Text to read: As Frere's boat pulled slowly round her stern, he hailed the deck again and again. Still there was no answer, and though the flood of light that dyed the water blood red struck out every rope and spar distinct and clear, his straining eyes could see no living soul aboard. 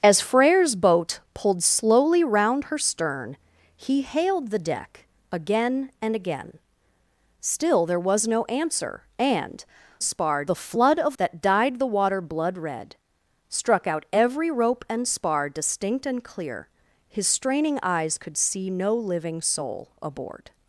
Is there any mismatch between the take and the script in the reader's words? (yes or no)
yes